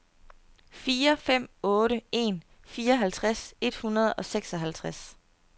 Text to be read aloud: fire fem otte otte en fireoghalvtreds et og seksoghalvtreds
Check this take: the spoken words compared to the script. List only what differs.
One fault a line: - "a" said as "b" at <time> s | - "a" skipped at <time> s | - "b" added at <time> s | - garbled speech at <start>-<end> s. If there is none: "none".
- "otte" skipped at 2.0 s
- "hundrede" added at 3.8 s